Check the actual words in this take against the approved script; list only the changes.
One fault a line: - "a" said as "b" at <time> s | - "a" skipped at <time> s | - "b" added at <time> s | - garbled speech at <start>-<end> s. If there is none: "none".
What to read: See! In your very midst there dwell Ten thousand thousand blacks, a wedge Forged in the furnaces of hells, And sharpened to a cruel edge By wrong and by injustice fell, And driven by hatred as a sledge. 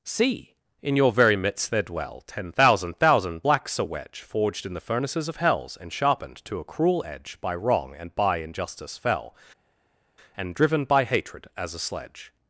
none